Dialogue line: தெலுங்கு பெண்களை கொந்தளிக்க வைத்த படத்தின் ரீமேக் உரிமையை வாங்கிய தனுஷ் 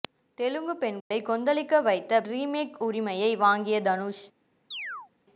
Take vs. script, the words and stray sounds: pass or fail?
fail